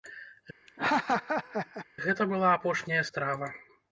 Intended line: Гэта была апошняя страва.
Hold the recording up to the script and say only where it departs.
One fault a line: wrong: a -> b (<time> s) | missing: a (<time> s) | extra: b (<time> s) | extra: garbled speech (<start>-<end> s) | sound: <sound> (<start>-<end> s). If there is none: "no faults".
sound: laugh (0.7-1.9 s)